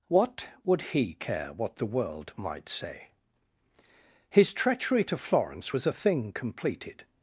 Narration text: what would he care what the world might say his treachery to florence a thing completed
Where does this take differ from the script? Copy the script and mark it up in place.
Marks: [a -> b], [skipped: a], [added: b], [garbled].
what would he care what the world might say his treachery to florence [added: was] a thing completed